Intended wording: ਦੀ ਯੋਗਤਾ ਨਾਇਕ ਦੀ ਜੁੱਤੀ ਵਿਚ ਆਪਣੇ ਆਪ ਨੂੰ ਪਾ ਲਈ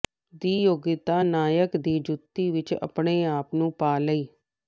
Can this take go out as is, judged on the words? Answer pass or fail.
pass